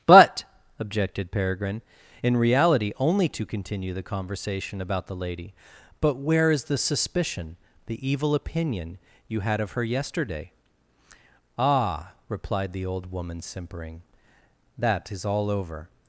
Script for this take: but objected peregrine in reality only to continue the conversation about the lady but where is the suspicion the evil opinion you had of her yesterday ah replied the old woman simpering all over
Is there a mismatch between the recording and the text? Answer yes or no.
yes